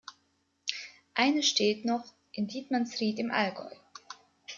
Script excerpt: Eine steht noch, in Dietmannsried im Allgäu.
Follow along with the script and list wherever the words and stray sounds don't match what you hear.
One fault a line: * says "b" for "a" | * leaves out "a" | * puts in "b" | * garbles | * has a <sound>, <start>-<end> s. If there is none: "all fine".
all fine